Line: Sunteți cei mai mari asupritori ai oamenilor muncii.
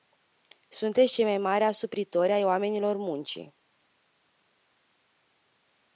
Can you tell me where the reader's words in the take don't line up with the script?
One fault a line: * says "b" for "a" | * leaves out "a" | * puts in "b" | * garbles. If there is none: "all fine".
all fine